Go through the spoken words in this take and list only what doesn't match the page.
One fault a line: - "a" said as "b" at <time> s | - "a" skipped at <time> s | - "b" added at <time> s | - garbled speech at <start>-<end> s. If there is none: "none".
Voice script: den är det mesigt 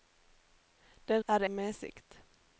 none